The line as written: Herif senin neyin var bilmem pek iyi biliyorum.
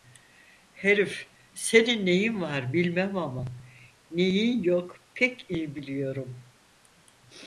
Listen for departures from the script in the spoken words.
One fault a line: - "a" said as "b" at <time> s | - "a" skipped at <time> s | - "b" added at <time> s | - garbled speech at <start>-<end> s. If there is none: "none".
- "ama neyin yok" added at 3.2 s